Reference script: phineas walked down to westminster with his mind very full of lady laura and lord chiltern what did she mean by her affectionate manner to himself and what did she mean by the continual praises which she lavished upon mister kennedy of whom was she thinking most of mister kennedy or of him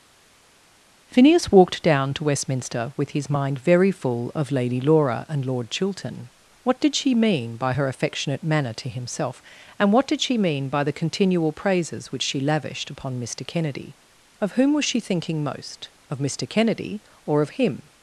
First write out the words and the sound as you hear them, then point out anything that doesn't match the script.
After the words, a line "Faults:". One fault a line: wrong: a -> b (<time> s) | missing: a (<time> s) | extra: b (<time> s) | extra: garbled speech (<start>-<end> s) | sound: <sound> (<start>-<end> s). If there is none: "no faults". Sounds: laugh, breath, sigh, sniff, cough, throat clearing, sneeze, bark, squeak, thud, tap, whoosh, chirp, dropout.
phineas walked down to westminster with his mind very full of lady laura and lord chiltern what did she mean by her affectionate manner to himself and what did she mean by the continual praises which she lavished upon mister kennedy of whom was she thinking most of mister kennedy or of him
Faults:
no faults